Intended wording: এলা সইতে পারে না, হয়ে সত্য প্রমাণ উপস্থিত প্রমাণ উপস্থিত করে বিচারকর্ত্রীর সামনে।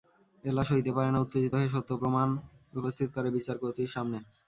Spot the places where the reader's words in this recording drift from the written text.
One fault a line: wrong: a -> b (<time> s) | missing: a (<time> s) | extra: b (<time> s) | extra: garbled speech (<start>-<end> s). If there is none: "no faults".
extra: উত্তেজিত (1.2 s)
missing: প্রমাণ উপস্থিত (3.1 s)